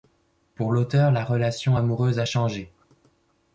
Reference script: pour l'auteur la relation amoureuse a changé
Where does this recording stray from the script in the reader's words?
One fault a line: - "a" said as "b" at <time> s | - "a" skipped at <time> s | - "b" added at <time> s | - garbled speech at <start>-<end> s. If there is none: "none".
none